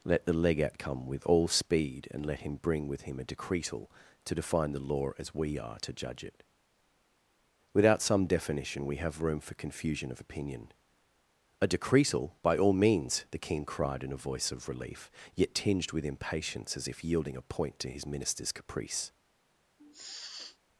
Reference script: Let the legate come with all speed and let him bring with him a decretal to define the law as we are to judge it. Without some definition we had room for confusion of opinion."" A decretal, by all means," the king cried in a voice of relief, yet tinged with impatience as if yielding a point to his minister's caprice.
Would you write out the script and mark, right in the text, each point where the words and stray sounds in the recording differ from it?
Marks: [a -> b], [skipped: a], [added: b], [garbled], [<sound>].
Let the legate come with all speed and let him bring with him a decretal to define the law as we are to judge it. Without some definition we [had -> have] room for confusion of opinion."" A decretal, by all means," the king cried in a voice of relief, yet tinged with impatience as if yielding a point to his minister's caprice. [sniff]